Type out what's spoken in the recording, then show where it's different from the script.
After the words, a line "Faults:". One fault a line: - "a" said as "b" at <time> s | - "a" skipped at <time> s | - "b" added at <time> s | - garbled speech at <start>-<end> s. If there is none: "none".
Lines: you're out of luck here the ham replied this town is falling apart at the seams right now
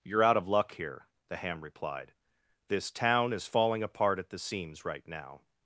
you're out of luck here the ham replied this town is falling apart at the seams right now
Faults:
none